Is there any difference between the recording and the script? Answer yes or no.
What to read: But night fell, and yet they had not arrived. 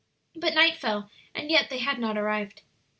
no